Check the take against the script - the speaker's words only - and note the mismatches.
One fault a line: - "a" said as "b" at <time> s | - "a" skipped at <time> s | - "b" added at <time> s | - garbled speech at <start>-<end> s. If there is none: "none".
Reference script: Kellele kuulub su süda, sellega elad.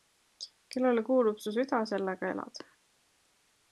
none